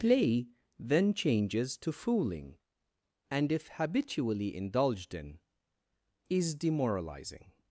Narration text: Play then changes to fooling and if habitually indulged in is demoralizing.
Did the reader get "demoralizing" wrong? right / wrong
right